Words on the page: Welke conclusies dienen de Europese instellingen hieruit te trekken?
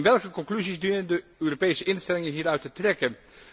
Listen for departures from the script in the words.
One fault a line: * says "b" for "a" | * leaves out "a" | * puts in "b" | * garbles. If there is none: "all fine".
all fine